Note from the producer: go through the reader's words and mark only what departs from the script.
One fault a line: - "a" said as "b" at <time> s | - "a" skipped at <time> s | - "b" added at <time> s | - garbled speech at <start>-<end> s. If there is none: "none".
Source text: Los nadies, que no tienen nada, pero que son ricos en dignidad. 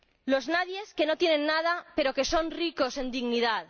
none